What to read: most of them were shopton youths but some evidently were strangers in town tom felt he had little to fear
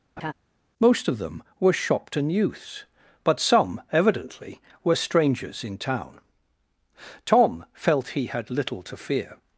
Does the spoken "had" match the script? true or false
true